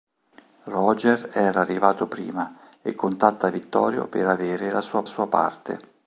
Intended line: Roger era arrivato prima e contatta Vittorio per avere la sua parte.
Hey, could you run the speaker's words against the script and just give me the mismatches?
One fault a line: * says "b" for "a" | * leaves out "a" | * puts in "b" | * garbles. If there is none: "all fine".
* puts in "sua"